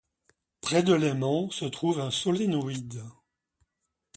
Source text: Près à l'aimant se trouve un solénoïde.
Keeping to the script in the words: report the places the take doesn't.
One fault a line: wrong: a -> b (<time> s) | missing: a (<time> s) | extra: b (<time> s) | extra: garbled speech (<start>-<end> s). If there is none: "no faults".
wrong: à -> de (0.8 s)